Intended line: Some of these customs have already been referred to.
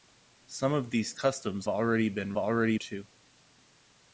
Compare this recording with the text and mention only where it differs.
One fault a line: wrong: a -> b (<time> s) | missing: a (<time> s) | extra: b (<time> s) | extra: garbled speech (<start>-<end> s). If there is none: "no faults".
missing: have (1.7 s)
wrong: referred -> already (2.4 s)